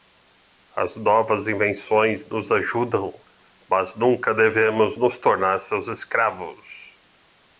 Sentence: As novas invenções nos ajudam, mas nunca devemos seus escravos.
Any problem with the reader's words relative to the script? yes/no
yes